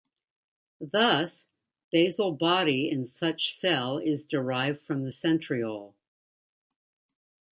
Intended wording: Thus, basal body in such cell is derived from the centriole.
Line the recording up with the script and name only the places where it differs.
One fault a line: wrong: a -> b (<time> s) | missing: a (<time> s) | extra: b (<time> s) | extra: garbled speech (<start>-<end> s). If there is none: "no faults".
no faults